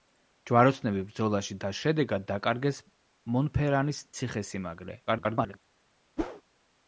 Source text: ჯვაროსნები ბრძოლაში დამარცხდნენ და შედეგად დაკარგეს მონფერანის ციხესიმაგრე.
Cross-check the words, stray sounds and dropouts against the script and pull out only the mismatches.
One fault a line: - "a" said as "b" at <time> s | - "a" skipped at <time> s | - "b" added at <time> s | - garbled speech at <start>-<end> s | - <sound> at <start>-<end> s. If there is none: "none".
- "დამარცხდნენ" skipped at 1.6 s
- garbled speech at 5.1-5.6 s
- whoosh at 6.2-6.4 s